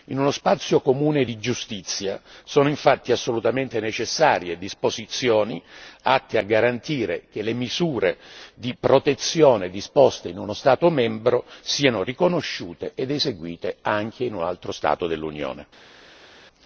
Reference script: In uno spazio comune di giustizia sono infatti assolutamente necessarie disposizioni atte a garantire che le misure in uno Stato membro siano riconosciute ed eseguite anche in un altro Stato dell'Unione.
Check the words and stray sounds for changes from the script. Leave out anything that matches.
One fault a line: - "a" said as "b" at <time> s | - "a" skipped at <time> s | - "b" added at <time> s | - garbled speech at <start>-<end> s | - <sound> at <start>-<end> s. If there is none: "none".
- "di protezione disposte" added at 8.5 s